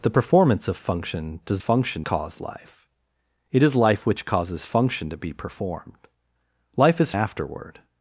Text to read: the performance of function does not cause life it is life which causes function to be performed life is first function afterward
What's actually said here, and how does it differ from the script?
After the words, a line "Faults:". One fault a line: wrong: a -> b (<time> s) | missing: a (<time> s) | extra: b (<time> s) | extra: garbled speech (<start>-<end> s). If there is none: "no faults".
the performance of function does function cause life it is life which causes function to be performed life is afterward
Faults:
wrong: not -> function (1.6 s)
missing: first function (7.1 s)